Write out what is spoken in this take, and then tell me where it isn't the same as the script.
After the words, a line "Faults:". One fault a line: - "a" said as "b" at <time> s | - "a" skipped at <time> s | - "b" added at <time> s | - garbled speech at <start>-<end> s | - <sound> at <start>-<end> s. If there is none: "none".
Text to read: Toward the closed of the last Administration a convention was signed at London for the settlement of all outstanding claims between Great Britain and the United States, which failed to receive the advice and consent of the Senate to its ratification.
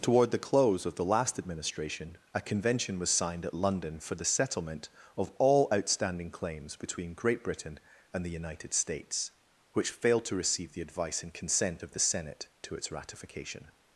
Toward the close of the last Administration a convention was signed at London for the settlement of all outstanding claims between Great Britain and the United States, which failed to receive the advice and consent of the Senate to its ratification.
Faults:
- "closed" said as "close" at 0.4 s